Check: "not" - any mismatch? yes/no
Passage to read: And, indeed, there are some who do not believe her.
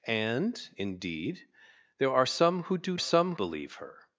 yes